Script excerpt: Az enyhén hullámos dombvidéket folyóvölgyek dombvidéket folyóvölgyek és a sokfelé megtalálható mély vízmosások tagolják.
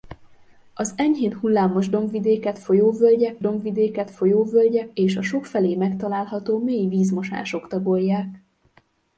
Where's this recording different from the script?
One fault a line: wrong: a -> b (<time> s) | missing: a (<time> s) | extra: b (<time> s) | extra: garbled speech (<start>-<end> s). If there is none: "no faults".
no faults